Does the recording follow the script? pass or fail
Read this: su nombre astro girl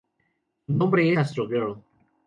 pass